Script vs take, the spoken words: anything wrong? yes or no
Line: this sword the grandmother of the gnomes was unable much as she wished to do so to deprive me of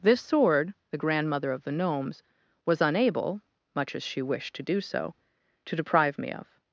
no